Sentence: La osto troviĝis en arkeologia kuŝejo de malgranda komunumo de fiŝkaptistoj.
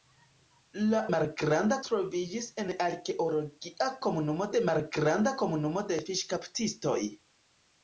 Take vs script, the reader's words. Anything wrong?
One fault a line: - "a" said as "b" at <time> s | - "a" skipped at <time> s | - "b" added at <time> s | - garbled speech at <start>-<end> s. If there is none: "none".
- "osto" said as "malgranda" at 1.1 s
- "kuŝejo" said as "komunumo" at 4.1 s